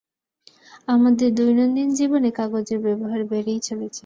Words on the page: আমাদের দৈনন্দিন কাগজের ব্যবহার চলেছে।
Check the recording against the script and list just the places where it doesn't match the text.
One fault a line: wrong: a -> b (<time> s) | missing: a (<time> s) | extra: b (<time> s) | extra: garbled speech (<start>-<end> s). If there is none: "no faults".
extra: জীবনে (1.9 s)
extra: বেড়েই (3.3 s)